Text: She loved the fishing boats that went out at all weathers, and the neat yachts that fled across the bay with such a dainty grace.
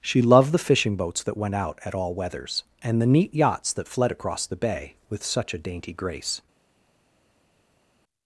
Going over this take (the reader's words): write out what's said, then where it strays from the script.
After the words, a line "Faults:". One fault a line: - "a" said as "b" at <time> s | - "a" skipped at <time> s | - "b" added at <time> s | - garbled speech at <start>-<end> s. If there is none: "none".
She loved the fishing boats that went out at all weathers, and the neat yachts that fled across the bay with such a dainty grace.
Faults:
none